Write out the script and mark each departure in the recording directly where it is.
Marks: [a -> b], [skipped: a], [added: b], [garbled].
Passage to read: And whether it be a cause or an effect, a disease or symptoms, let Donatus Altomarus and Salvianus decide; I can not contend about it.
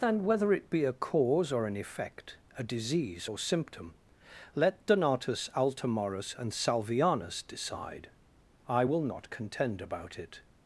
And whether it be a cause or an effect, a disease or [symptoms, -> symptom] let Donatus Altomarus and Salvianus decide; I [can -> will] not contend about it.